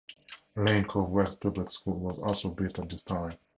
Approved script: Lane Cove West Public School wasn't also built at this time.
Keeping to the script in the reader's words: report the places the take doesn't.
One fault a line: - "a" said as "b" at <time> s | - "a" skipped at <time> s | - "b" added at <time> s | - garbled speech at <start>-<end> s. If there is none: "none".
- "wasn't" said as "was" at 2.0 s